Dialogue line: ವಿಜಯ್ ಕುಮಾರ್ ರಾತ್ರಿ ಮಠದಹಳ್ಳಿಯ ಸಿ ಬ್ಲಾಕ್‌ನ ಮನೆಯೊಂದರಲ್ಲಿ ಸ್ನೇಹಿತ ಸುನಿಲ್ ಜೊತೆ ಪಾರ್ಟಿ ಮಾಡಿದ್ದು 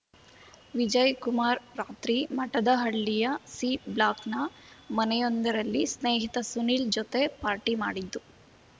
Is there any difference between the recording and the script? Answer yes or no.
no